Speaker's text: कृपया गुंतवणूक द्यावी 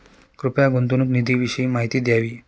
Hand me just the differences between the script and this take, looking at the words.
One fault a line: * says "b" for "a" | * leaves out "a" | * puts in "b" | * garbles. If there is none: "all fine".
* puts in "निधीविषयी माहिती"